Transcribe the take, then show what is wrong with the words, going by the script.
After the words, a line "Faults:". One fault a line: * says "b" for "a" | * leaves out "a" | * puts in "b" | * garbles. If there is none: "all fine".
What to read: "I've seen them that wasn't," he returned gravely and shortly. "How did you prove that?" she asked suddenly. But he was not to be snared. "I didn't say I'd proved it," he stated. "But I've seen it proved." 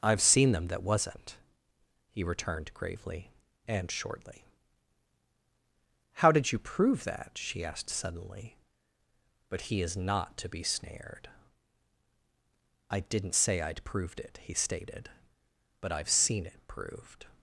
"I've seen them that wasn't," he returned gravely and shortly. "How did you prove that?" she asked suddenly. But he is not to be snared. "I didn't say I'd proved it," he stated. "But I've seen it proved."
Faults:
* says "is" for "was"